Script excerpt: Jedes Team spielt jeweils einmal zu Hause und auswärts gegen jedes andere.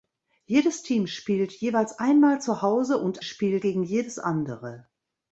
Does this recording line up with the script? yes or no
no